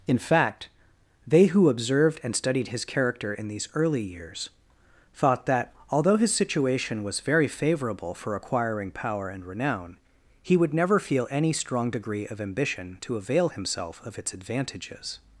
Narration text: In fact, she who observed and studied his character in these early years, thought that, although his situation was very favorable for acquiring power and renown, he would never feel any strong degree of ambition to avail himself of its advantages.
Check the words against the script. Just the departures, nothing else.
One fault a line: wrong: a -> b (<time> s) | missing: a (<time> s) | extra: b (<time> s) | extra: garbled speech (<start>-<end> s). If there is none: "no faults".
wrong: she -> they (1.3 s)